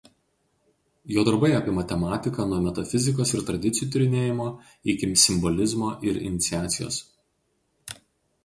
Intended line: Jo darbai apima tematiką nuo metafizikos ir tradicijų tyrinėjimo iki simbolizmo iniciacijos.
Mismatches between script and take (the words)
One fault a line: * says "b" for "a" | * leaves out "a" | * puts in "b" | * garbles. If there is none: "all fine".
* puts in "ir"